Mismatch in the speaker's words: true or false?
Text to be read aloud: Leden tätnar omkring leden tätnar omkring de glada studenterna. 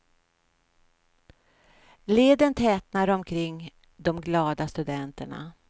true